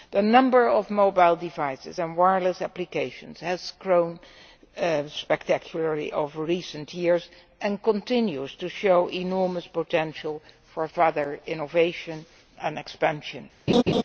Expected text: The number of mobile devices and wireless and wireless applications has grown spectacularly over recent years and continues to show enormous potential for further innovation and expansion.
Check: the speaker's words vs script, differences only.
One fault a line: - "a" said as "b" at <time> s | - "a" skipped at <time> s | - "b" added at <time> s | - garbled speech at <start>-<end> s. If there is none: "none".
- "and wireless" skipped at 2.6 s